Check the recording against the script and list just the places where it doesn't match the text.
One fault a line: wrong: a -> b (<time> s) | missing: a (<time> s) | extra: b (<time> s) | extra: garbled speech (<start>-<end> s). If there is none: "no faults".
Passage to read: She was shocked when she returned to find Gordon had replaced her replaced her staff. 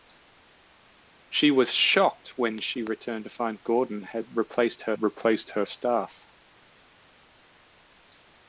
no faults